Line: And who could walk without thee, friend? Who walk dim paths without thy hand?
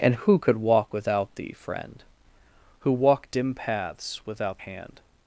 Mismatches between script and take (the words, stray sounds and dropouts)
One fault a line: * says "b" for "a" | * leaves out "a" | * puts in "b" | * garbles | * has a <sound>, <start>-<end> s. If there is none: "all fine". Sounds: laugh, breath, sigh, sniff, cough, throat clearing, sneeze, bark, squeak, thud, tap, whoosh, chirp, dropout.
* leaves out "thy"